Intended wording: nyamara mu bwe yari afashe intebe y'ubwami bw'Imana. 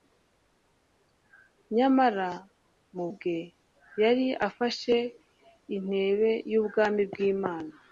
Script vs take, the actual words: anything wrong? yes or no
no